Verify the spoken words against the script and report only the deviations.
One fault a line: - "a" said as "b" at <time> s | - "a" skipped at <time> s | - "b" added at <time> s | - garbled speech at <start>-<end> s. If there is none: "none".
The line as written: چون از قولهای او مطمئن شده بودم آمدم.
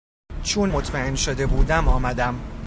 - "از قولهای او" skipped at 0.7 s